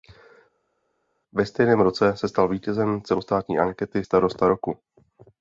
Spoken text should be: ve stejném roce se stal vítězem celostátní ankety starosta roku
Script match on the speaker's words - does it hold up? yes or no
yes